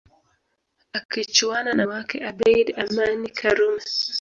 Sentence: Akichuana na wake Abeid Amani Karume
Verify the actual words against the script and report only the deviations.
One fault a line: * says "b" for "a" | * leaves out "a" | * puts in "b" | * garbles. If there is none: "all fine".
all fine